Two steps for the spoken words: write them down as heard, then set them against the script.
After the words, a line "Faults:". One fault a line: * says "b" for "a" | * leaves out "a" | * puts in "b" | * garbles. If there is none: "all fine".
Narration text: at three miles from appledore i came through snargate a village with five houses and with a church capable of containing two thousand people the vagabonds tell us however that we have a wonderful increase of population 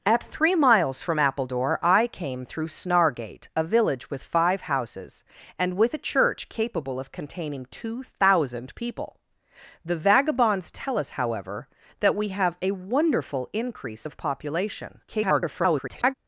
at three miles from appledore i came through snargate a village with five houses and with a church capable of containing two thousand people the vagabonds tell us however that we have a wonderful increase of population [garbled]
Faults:
* garbles